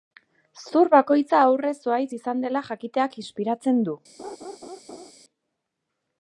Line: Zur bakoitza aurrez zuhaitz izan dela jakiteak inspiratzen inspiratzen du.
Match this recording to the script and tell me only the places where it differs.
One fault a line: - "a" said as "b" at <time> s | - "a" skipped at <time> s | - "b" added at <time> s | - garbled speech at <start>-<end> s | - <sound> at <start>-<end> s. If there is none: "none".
- "inspiratzen" skipped at 3.8 s
- laugh at 4.2-5.1 s